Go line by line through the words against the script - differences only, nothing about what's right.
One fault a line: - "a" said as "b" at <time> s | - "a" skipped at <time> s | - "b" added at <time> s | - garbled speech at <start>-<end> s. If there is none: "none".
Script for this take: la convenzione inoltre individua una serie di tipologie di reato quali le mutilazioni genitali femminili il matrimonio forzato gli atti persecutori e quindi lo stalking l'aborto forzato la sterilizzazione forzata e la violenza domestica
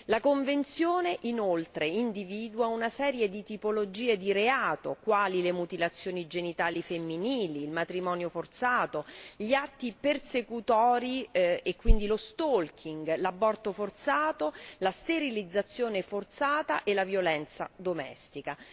none